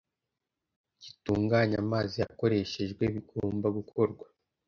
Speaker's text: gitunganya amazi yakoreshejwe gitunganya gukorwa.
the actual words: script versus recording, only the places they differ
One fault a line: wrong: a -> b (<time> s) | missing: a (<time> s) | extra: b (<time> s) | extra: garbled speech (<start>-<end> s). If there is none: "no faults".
wrong: gitunganya -> bigomba (3.1 s)